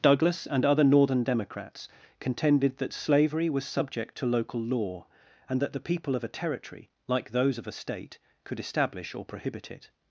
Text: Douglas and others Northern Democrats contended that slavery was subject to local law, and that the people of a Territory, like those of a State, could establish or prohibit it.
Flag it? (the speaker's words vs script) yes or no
yes